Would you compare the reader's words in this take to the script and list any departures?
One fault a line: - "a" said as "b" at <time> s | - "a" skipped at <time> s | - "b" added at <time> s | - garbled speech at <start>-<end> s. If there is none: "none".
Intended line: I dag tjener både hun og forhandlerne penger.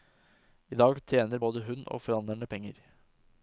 none